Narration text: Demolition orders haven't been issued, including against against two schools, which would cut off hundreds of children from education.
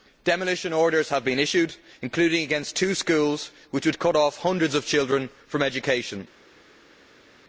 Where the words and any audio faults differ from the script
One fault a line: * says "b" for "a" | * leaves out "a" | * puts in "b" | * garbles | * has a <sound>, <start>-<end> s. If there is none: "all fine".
* says "have" for "haven't"
* leaves out "against"